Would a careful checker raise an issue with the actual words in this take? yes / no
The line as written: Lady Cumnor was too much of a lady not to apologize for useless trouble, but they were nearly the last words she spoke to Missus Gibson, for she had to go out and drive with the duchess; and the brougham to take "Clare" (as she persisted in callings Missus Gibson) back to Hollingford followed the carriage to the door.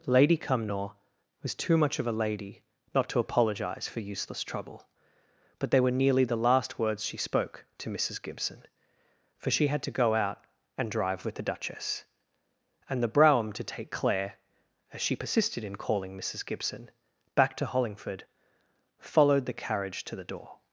yes